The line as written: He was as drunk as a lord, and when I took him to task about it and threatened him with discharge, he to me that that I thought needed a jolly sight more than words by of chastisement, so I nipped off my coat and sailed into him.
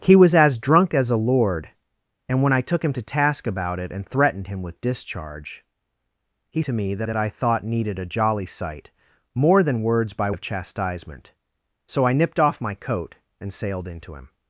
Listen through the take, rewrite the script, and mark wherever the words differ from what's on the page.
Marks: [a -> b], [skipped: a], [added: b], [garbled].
He was as drunk as a lord, and when I took him to task about it and threatened him with discharge, he to me that that I thought needed a jolly sight more than words by of chastisement, so I nipped off my coat and sailed into him.